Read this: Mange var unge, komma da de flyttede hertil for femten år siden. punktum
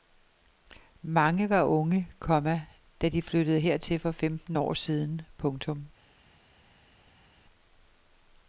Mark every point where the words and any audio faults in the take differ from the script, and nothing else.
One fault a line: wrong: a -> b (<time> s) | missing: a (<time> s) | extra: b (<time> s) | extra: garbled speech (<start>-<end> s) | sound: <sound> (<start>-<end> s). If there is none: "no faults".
no faults